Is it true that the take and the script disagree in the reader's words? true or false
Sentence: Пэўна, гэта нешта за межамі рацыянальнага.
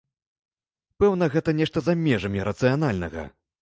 false